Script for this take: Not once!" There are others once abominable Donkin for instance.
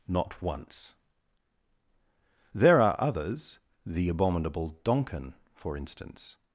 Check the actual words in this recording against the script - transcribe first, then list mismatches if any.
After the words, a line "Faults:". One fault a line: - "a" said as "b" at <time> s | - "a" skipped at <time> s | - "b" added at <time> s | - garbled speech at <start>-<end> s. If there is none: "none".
Not once!" There are others the abominable Donkin for instance.
Faults:
- "once" said as "the" at 3.9 s